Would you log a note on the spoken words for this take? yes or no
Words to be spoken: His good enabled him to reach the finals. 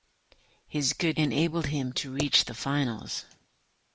no